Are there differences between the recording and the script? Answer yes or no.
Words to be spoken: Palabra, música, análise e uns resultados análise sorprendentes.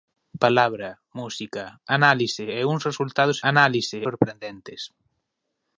no